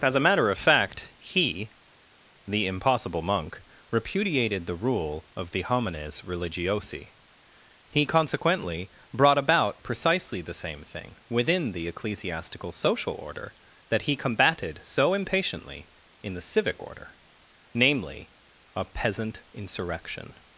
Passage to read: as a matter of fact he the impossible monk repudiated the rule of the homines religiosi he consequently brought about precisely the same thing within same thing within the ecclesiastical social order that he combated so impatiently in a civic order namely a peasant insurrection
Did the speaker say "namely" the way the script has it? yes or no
yes